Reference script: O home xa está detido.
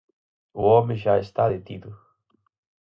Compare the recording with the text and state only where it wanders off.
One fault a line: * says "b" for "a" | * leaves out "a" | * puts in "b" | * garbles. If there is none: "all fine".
all fine